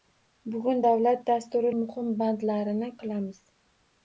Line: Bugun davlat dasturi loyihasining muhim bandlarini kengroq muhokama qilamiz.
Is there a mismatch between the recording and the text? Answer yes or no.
yes